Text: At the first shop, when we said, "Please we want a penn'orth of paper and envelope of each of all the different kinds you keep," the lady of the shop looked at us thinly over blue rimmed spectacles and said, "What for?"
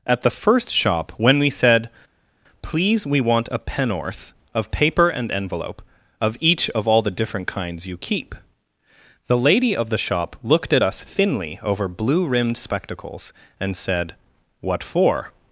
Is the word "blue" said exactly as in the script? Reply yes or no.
yes